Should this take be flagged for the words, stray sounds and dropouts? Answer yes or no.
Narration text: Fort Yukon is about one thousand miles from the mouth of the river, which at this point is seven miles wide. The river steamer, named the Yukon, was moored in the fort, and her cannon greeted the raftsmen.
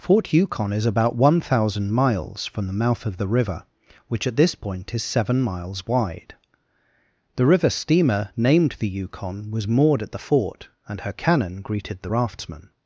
yes